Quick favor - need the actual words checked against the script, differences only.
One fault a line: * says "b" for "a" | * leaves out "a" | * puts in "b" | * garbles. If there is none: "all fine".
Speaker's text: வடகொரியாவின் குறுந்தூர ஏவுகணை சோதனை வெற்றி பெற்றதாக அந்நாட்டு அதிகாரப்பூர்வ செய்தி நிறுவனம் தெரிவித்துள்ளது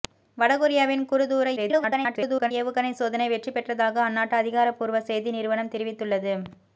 * garbles